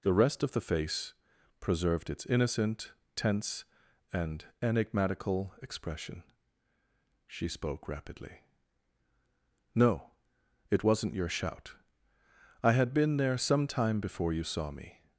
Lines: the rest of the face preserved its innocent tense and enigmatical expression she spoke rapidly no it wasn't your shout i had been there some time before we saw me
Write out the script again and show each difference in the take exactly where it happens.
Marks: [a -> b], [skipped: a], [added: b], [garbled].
the rest of the face preserved its innocent tense and enigmatical expression she spoke rapidly no it wasn't your shout i had been there some time before [we -> you] saw me